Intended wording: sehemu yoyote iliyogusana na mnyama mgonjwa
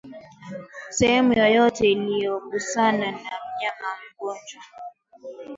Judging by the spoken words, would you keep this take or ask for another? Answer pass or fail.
pass